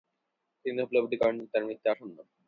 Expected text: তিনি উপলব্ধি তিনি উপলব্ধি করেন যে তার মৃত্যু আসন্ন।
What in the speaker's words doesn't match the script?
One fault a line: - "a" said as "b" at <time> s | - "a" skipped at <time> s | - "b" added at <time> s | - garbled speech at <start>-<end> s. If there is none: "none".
- "তিনি উপলব্ধি" skipped at 1.2 s